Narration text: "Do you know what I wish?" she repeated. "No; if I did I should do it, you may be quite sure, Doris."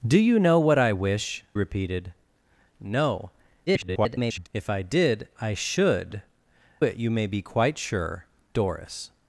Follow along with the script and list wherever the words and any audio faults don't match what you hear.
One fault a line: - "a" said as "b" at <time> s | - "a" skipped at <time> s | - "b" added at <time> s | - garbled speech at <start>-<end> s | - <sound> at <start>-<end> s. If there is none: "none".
- "she" skipped at 1.4 s
- garbled speech at 3.7-4.5 s
- "do" skipped at 6.2 s